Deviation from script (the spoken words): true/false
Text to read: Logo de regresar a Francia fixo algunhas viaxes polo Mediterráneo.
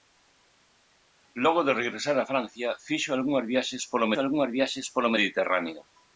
true